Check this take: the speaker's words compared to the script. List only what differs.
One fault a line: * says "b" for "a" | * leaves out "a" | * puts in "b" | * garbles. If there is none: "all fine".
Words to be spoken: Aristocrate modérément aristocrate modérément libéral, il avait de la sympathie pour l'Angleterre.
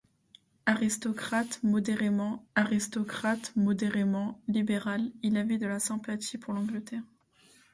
all fine